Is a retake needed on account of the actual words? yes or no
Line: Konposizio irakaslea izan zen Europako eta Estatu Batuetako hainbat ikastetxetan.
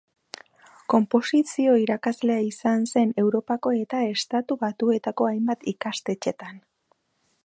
no